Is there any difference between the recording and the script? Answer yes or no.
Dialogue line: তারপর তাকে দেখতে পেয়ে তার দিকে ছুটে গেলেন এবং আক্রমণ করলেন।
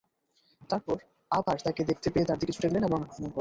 yes